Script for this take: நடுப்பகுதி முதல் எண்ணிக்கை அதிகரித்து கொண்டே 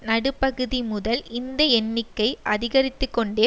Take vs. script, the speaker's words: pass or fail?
fail